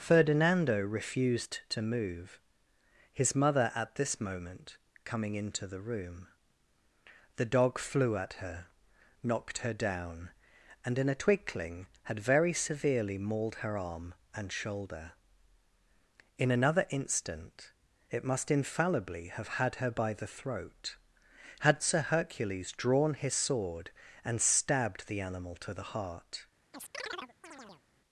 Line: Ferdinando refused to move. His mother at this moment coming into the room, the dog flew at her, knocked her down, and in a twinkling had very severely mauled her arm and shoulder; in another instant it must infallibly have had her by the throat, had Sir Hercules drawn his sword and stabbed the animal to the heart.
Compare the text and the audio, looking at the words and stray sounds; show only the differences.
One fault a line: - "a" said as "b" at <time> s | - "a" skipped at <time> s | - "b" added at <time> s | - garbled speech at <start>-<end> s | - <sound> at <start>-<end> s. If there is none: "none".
- chirp at 26.7-27.8 s